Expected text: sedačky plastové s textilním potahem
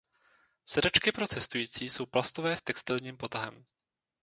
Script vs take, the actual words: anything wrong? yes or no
yes